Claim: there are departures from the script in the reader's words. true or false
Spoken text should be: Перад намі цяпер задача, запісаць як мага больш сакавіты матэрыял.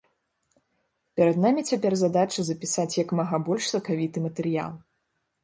false